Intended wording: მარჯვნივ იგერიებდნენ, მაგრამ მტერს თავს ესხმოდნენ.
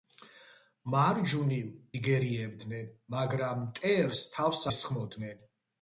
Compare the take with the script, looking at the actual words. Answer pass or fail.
pass